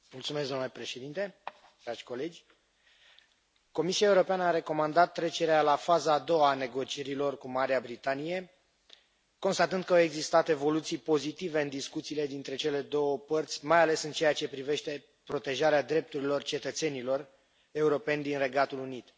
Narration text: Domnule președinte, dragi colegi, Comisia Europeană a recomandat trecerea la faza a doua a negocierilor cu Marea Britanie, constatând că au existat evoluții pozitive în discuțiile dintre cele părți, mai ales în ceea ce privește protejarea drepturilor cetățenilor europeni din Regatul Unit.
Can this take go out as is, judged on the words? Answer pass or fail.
fail